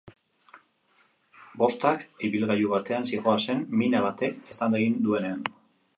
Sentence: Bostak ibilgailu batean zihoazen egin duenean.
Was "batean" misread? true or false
false